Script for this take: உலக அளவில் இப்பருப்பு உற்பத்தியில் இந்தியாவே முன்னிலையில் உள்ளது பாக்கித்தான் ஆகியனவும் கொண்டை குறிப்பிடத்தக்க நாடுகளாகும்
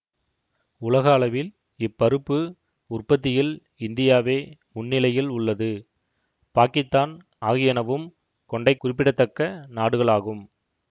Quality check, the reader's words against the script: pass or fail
pass